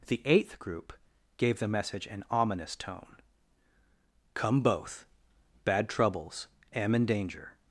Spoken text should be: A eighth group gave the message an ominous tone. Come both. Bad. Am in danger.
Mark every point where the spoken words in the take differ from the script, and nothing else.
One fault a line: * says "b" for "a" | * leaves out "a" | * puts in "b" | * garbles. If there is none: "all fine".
* says "The" for "A"
* puts in "troubles"